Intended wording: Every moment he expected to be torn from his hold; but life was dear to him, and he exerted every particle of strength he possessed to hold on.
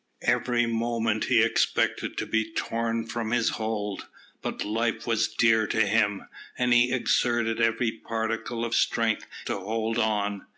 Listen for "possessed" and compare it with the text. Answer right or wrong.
wrong